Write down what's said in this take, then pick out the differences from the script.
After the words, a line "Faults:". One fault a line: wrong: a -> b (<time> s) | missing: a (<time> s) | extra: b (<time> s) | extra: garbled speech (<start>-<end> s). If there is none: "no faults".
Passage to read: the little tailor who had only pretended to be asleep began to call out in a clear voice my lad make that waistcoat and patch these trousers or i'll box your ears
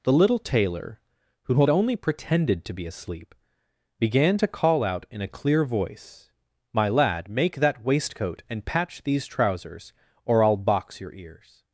the little tailor who had only pretended to be asleep began to call out in a clear voice my lad make that waistcoat and patch these trousers or i'll box your ears
Faults:
no faults